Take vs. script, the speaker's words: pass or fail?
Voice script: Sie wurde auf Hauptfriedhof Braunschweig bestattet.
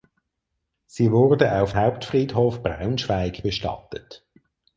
pass